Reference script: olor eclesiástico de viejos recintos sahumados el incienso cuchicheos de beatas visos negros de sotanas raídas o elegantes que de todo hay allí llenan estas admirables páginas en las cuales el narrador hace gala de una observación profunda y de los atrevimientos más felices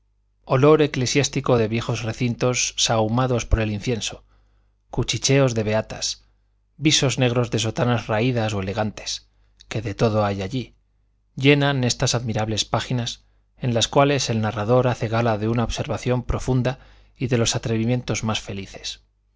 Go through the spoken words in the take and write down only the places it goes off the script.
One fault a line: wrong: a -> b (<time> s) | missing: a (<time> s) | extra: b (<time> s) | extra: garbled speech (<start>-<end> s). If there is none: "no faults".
extra: por (3.4 s)